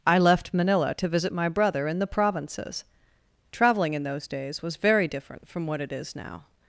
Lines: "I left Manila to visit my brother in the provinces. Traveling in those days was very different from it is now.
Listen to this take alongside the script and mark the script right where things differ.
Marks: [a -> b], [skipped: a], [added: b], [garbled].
"I left Manila to visit my brother in the provinces. Traveling in those days was very different from [added: what] it is now.